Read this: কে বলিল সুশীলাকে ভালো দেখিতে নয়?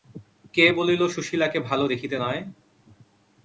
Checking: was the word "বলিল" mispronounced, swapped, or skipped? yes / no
no